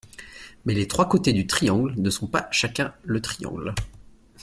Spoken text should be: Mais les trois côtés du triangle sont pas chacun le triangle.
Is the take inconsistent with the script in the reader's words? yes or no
yes